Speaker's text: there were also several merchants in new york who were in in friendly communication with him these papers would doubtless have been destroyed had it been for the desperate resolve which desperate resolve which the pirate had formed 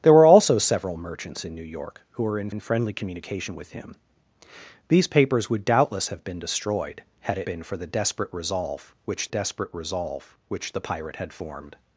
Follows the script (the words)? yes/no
yes